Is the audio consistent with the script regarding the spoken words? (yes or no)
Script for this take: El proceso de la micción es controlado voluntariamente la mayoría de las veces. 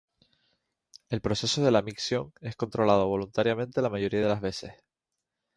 yes